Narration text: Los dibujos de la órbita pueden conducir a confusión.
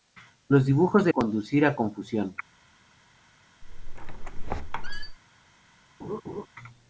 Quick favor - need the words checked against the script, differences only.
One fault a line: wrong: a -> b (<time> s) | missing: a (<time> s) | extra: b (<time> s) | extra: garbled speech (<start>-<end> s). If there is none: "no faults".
missing: la órbita pueden (1.1 s)